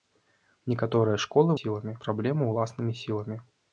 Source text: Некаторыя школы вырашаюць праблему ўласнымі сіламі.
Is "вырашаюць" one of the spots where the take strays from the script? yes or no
yes